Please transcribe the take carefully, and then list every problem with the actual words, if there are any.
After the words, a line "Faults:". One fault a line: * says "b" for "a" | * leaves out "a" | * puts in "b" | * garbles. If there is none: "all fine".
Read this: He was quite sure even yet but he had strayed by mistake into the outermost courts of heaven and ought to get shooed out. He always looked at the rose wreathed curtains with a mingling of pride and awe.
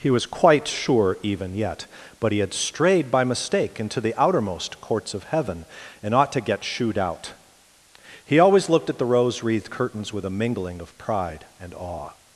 He was quite sure even yet but he had strayed by mistake into the outermost courts of heaven and ought to get shooed out. He always looked at the rose wreathed curtains with a mingling of pride and awe.
Faults:
all fine